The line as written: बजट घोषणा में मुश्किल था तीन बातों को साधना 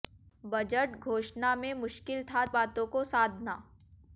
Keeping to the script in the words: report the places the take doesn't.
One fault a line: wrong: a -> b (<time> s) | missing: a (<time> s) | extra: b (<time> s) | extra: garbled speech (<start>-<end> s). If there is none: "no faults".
missing: तीन (2.5 s)